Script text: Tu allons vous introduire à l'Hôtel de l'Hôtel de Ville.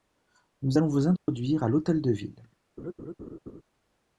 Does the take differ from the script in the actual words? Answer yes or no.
yes